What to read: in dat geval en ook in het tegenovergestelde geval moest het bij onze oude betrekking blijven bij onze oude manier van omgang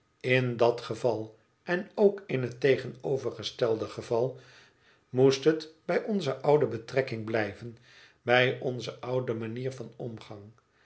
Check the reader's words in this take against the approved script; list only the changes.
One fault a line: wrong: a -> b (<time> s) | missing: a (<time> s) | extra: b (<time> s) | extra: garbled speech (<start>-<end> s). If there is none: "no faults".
no faults